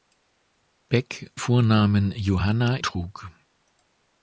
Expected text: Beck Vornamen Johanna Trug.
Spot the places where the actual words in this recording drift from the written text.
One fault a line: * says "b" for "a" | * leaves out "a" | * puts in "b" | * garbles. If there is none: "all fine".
all fine